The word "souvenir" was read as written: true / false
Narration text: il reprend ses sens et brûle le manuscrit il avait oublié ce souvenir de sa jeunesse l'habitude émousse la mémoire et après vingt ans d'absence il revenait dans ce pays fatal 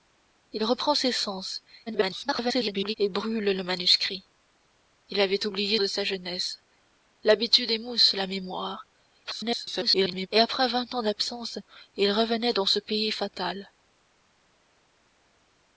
false